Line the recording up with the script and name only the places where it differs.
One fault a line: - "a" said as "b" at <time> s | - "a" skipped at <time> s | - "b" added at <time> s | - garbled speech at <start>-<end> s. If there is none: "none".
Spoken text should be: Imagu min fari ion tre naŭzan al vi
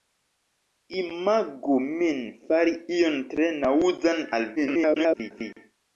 - garbled speech at 4.6-5.3 s